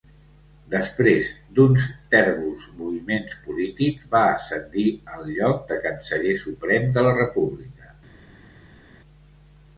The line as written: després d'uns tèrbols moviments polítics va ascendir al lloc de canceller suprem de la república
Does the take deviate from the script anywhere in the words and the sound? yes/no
no